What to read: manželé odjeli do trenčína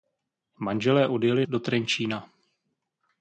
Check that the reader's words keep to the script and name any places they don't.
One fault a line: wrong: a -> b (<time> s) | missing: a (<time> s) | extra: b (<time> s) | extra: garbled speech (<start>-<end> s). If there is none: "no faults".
no faults